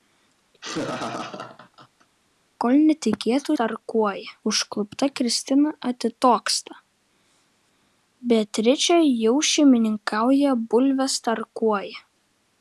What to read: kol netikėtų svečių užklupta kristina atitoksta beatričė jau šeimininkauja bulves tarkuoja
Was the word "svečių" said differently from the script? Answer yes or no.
yes